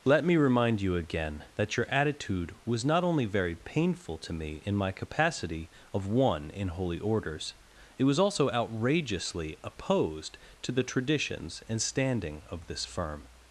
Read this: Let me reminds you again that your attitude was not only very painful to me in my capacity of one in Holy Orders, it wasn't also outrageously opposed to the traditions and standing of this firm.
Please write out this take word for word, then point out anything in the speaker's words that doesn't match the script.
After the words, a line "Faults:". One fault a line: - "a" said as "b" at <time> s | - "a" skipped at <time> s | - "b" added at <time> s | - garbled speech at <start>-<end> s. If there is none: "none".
Let me remind you again that your attitude was not only very painful to me in my capacity of one in Holy Orders, it was also outrageously opposed to the traditions and standing of this firm.
Faults:
- "reminds" said as "remind" at 0.3 s
- "wasn't" said as "was" at 8.0 s